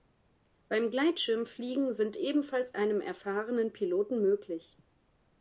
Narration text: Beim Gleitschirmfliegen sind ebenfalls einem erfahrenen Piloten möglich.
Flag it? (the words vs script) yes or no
no